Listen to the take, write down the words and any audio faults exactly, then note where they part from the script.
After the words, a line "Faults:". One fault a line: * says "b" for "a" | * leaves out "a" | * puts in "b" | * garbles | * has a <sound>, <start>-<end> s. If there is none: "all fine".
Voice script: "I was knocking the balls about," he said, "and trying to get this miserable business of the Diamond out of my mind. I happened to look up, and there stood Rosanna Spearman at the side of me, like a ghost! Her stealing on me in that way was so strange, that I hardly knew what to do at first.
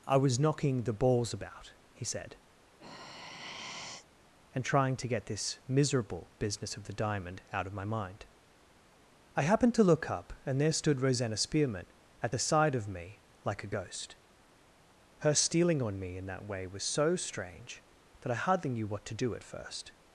"I was knocking the balls about," he said, "and trying to get this miserable business of the Diamond out of my mind. I happened to look up, and there stood Rosanna Spearman at the side of me, like a ghost! Her stealing on me in that way was so strange, that I hardly knew what to do at first.
Faults:
* has a sigh, 2.8-4.1 s